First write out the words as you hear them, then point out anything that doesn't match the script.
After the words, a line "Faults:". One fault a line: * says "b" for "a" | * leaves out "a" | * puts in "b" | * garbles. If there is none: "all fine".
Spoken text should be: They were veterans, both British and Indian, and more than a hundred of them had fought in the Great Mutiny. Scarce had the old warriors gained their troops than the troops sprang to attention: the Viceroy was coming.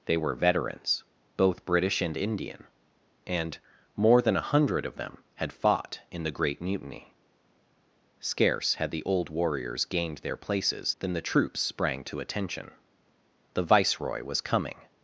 They were veterans, both British and Indian, and more than a hundred of them had fought in the Great Mutiny. Scarce had the old warriors gained their places than the troops sprang to attention: the Viceroy was coming.
Faults:
* says "places" for "troops"